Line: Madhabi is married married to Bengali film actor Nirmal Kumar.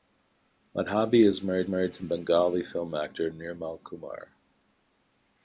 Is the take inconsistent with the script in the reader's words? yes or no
no